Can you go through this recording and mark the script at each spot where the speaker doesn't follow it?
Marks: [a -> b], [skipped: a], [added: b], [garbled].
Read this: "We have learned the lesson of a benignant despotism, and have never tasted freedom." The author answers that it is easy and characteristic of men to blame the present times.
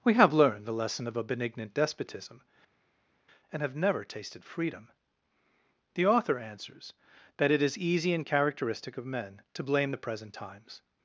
"We have learned the lesson of a benignant despotism, and have never tasted freedom." The author answers that it is easy and characteristic of men to blame the present times.